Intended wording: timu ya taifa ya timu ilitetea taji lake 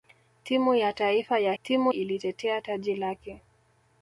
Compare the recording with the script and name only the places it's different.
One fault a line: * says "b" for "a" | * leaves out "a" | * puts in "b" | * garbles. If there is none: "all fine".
all fine